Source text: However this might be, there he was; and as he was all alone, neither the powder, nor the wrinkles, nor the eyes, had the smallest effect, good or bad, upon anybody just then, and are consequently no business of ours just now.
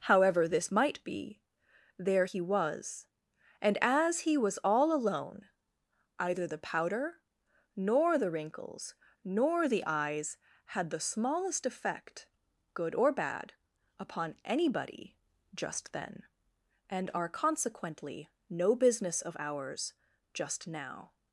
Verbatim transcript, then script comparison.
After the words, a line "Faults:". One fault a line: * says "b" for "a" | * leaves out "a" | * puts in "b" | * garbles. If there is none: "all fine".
However this might be, there he was; and as he was all alone, either the powder, nor the wrinkles, nor the eyes, had the smallest effect, good or bad, upon anybody just then, and are consequently no business of ours just now.
Faults:
* says "either" for "neither"